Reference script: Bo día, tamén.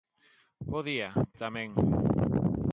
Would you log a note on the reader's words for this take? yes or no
no